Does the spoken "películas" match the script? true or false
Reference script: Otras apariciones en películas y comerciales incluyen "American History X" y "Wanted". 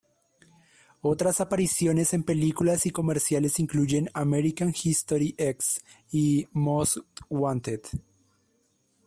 true